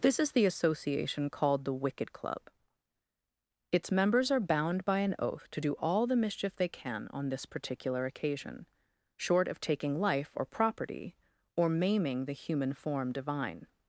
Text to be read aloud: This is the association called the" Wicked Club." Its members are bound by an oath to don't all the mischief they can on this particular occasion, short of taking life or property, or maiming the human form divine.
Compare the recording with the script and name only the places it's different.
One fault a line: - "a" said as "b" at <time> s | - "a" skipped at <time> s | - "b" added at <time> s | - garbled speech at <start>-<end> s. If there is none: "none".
- "don't" said as "do" at 5.6 s